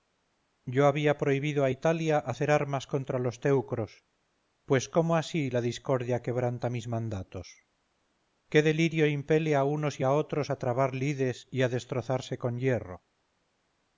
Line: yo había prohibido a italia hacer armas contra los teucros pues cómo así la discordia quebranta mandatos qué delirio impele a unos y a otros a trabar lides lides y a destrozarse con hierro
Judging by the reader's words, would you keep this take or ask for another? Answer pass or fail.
fail